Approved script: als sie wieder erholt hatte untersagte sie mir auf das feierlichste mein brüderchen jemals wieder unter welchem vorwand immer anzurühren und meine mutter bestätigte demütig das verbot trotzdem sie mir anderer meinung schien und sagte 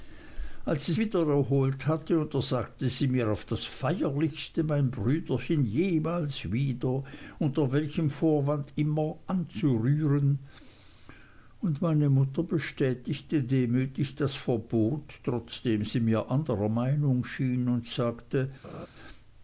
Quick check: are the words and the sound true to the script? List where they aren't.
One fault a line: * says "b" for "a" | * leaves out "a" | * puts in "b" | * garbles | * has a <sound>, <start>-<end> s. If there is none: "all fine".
* has a laugh, 18.6-18.9 s